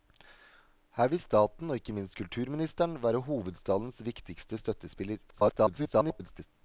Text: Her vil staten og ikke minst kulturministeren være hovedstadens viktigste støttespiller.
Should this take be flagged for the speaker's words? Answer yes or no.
yes